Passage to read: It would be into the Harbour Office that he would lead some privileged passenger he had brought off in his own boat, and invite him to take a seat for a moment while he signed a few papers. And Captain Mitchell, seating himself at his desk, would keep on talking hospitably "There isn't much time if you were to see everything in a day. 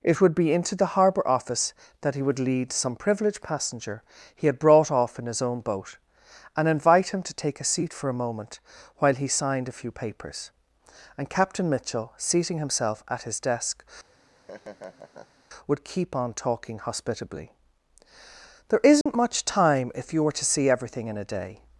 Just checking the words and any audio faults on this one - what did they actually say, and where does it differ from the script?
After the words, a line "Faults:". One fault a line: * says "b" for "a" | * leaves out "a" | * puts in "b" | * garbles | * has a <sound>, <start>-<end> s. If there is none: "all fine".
It would be into the Harbour Office that he would lead some privileged passenger he had brought off in his own boat, and invite him to take a seat for a moment while he signed a few papers. And Captain Mitchell, seating himself at his desk, would keep on talking hospitably "There isn't much time if you were to see everything in a day.
Faults:
* has a laugh, 14.1-15.4 s
* has a dropout, 19.0-19.1 s